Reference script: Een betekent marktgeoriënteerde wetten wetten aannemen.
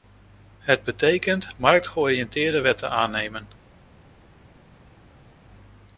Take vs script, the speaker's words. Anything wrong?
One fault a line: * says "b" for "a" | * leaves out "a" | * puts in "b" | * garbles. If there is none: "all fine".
* says "Het" for "Een"
* leaves out "wetten"